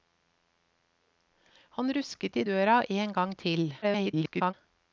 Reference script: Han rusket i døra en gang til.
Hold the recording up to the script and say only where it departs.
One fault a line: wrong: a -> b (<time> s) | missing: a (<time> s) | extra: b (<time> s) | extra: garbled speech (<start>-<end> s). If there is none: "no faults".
extra: garbled speech (3.8-4.5 s)